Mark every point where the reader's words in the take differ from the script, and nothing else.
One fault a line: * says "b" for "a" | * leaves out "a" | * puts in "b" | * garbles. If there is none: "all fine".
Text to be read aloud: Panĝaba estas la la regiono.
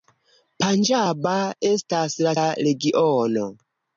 all fine